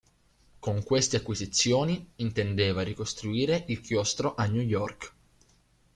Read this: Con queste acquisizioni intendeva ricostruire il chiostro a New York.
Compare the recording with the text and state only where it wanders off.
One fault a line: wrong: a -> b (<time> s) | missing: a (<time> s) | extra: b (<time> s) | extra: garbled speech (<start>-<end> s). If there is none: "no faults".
no faults